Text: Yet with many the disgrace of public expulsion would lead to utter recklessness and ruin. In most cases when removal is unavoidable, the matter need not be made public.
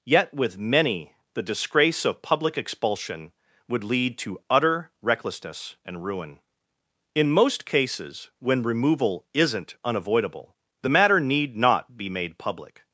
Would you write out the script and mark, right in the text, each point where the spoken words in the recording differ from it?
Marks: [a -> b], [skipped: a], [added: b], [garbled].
Yet with many the disgrace of public expulsion would lead to utter recklessness and ruin. In most cases when removal [is -> isn't] unavoidable, the matter need not be made public.